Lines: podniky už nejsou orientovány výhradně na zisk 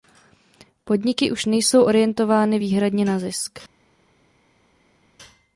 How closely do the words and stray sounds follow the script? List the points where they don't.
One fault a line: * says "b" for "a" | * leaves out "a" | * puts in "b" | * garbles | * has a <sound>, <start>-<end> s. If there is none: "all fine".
all fine